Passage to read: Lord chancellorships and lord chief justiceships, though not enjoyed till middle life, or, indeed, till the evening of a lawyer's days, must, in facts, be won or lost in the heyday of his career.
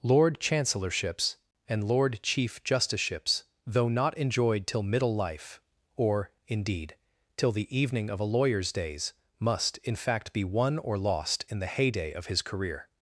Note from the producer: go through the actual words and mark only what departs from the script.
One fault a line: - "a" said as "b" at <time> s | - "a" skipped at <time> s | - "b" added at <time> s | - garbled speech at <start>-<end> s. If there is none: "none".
- "facts" said as "fact" at 9.9 s